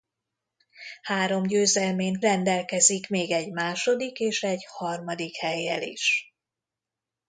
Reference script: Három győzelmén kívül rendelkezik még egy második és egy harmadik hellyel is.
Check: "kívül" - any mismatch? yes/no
yes